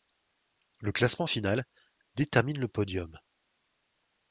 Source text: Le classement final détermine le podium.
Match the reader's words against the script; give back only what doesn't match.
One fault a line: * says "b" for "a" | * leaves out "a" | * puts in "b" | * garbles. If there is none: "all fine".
all fine